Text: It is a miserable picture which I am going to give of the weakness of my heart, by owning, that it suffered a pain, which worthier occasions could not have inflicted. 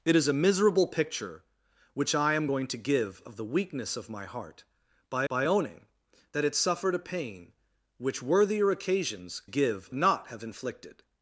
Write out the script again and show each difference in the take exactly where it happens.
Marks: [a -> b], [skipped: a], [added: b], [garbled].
It is a miserable picture which I am going to give of the weakness of my heart, by [added: by] owning, that it suffered a pain, which worthier occasions [could -> give] not have inflicted.